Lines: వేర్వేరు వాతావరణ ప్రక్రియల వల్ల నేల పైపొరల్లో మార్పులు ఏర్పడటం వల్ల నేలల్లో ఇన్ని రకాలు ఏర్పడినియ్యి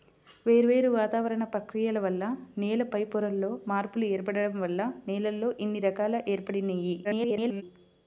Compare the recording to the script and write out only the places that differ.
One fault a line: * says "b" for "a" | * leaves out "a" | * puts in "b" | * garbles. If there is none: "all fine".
* garbles